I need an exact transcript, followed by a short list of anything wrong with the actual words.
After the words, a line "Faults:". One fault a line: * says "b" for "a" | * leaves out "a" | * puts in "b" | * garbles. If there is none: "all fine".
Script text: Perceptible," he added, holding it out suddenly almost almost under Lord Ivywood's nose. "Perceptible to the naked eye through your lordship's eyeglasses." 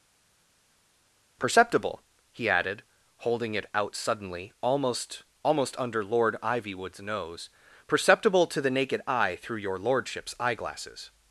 Perceptible," he added, holding it out suddenly almost almost under Lord Ivywood's nose. "Perceptible to the naked eye through your lordship's eyeglasses."
Faults:
all fine